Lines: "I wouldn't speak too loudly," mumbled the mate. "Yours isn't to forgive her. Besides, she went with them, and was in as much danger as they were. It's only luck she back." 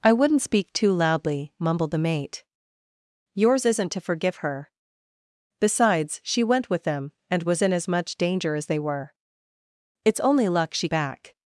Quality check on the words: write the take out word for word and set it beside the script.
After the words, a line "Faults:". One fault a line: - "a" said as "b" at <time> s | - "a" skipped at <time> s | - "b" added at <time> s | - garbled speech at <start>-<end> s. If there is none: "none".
"I wouldn't speak too loudly," mumbled the mate. "Yours isn't to forgive her. Besides, she went with them, and was in as much danger as they were. It's only luck she back."
Faults:
none